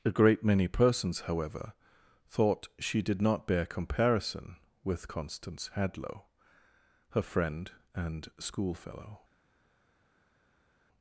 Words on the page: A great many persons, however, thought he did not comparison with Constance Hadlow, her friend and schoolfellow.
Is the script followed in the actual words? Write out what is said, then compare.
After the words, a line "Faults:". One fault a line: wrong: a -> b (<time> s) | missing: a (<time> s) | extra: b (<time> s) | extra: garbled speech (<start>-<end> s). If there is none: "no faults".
A great many persons, however, thought she did not bear comparison with Constance Hadlow, her friend and schoolfellow.
Faults:
wrong: he -> she (2.8 s)
extra: bear (3.5 s)